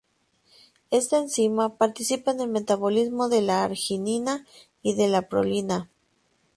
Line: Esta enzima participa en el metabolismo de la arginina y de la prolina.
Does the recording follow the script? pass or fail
pass